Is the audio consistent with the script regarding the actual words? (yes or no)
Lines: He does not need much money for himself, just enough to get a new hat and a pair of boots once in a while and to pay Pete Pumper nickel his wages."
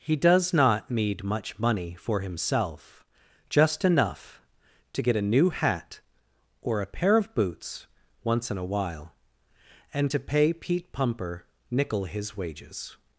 no